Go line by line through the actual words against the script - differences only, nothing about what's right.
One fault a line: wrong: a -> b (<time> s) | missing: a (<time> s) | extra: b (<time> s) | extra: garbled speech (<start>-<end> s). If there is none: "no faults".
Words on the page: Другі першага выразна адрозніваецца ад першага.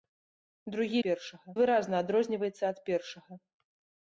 no faults